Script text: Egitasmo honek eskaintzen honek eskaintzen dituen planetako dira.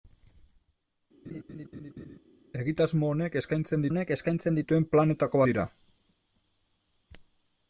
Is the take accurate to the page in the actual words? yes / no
yes